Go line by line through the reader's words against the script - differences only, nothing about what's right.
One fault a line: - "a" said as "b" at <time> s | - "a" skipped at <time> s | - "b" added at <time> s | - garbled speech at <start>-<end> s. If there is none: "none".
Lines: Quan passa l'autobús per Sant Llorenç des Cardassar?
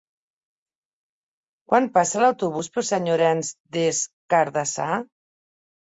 none